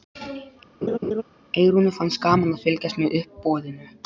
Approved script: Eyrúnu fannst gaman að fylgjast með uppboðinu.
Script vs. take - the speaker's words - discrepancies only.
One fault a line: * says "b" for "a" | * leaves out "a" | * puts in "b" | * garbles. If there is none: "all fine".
all fine